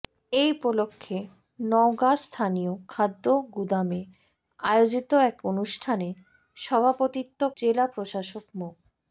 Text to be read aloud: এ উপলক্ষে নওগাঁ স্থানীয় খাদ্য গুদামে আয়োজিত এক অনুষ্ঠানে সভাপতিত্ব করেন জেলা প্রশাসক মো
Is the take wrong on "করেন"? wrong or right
wrong